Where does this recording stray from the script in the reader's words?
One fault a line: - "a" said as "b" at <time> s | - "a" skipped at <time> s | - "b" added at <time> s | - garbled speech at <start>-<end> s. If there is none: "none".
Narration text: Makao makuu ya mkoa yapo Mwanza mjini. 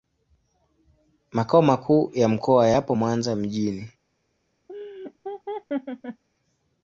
none